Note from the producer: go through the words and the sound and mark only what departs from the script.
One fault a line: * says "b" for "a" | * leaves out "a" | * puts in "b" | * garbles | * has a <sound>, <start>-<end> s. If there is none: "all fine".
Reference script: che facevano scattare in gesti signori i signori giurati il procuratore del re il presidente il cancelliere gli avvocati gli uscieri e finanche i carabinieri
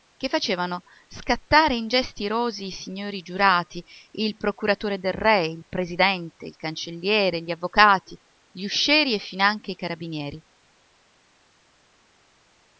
* says "irosi" for "signori"